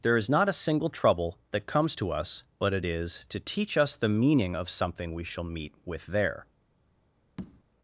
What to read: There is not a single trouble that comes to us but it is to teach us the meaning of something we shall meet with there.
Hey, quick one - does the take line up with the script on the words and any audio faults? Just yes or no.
no